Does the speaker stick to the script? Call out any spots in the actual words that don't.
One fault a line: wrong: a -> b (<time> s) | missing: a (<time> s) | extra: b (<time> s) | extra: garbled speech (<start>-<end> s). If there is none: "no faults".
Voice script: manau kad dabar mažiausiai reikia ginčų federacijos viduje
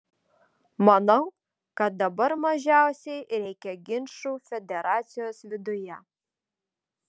no faults